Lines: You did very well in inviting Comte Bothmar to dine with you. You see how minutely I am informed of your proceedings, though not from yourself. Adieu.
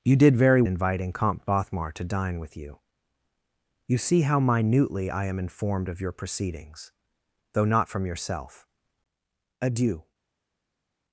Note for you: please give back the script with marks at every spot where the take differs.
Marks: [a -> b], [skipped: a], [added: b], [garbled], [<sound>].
You did very [skipped: well in] inviting Comte Bothmar to dine with you. You see how minutely I am informed of your proceedings, though not from yourself. Adieu.